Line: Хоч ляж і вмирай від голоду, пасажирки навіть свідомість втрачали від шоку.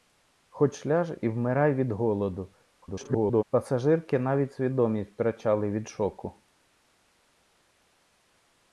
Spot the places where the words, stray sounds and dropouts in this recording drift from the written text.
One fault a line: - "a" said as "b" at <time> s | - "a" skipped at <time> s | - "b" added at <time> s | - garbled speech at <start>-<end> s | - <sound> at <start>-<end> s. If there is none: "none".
- garbled speech at 2.8-3.4 s